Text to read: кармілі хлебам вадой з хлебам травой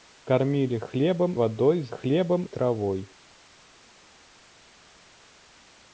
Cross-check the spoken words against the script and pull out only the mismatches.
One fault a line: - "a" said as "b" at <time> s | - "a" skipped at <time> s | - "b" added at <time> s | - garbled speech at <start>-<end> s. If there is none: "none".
none